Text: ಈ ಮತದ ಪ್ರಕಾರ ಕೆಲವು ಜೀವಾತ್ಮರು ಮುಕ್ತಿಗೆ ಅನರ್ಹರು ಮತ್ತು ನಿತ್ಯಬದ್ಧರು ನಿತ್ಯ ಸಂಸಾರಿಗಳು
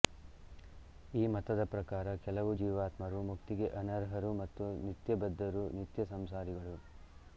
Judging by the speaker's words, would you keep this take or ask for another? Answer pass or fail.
pass